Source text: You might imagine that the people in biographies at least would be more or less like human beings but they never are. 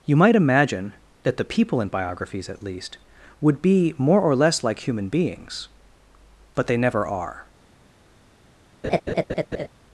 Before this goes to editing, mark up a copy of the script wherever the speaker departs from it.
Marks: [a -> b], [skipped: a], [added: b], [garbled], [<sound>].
You might imagine that the people in biographies at least would be more or less like human beings but they never are. [laugh]